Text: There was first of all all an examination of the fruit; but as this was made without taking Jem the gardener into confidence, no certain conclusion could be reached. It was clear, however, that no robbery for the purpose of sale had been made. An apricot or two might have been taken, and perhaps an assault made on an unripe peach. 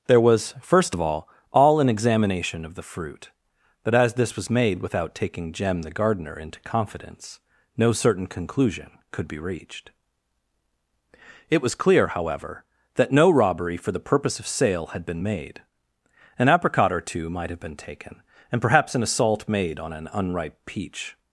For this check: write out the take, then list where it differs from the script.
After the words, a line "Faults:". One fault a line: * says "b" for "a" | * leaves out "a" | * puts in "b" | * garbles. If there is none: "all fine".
There was first of all all an examination of the fruit; but as this was made without taking Jem the gardener into confidence, no certain conclusion could be reached. It was clear, however, that no robbery for the purpose of sale had been made. An apricot or two might have been taken, and perhaps an assault made on an unripe peach.
Faults:
all fine